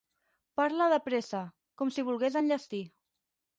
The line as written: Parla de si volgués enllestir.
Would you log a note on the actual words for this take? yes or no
yes